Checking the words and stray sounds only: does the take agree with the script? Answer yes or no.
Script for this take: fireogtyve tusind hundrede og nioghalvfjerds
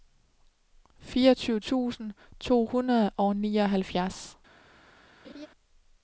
no